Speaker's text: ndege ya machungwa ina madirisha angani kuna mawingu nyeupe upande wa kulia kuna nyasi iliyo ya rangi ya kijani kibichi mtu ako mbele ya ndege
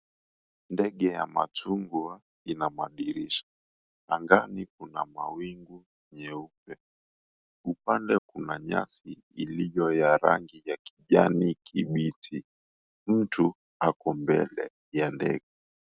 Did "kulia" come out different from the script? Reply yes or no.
yes